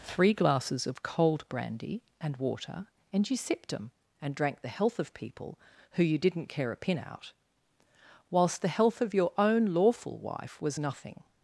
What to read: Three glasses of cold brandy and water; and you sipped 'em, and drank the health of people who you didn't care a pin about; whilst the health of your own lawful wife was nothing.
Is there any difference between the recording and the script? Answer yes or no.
yes